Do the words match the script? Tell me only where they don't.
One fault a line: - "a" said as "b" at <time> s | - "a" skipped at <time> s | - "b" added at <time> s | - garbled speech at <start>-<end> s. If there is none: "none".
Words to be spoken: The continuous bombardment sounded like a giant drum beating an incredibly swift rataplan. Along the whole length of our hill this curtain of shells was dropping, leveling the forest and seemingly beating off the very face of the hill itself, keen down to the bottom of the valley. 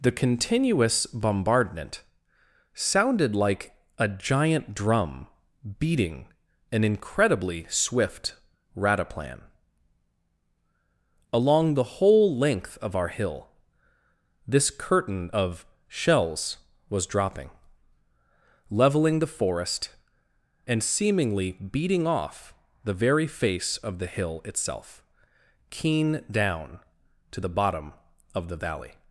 none